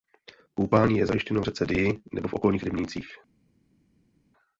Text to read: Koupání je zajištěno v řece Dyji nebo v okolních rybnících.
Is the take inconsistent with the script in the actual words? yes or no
no